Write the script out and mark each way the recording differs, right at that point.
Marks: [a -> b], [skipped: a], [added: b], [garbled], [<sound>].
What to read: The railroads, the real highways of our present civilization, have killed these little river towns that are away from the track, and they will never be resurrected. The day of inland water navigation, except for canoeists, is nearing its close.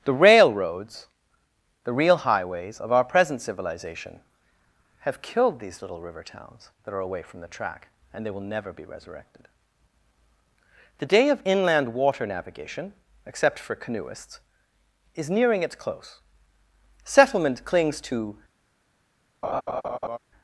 The railroads, the real highways of our present civilization, have killed these little river towns that are away from the track, and they will never be resurrected. The day of inland water navigation, except for canoeists, is nearing its close. [added: Settlement clings to] [laugh]